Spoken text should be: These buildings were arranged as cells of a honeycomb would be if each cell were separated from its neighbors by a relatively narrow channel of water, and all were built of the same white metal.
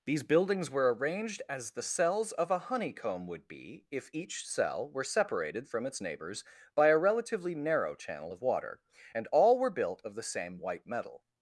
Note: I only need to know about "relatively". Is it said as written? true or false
true